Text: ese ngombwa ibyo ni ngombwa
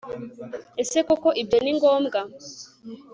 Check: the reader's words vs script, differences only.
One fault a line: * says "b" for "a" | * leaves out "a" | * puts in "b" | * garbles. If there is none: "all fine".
* says "koko" for "ngombwa"